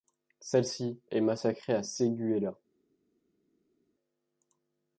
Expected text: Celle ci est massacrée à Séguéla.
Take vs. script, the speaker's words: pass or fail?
pass